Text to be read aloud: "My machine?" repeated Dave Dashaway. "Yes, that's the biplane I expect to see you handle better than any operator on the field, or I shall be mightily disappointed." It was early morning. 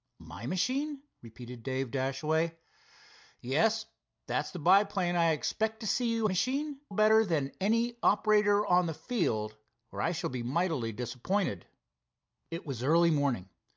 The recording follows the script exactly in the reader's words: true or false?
false